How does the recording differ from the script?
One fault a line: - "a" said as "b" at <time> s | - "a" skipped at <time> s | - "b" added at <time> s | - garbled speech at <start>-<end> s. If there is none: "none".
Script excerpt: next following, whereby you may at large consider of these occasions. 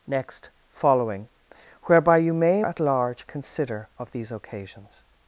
none